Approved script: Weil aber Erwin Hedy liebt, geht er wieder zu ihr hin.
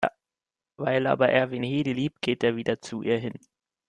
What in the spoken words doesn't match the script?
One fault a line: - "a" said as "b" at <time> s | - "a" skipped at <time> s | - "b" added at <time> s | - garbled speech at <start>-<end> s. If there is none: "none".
none